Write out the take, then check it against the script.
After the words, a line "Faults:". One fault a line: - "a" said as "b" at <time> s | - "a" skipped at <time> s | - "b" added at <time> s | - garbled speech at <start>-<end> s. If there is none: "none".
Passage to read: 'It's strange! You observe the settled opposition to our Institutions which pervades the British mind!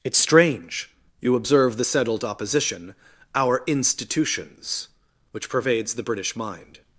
'It's strange! You observe the settled opposition our Institutions which pervades the British mind!
Faults:
- "to" skipped at 2.9 s